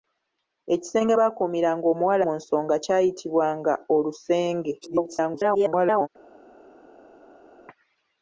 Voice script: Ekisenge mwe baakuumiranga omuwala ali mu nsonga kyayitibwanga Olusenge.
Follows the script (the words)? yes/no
no